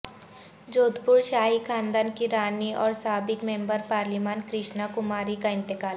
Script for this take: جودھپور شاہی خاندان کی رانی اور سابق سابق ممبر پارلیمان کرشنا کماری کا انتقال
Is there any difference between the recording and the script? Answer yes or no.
yes